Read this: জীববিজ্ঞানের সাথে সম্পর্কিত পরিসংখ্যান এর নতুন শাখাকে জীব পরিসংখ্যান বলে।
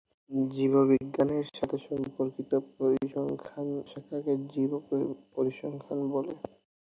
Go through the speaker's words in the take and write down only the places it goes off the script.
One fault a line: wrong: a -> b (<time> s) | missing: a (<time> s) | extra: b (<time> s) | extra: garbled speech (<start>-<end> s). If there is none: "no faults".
missing: এর নতুন (3.7 s)